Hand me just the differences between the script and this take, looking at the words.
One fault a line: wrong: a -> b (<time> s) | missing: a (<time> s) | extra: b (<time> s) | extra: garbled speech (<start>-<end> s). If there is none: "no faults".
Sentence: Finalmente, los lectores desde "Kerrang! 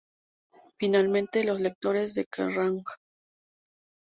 wrong: desde -> de (2.1 s)